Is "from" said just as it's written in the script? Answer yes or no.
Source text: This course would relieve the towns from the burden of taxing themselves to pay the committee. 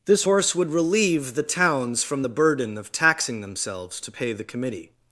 yes